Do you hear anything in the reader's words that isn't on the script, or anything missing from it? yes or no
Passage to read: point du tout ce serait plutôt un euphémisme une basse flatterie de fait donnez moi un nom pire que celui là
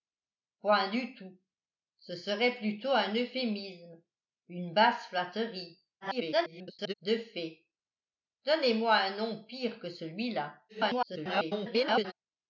yes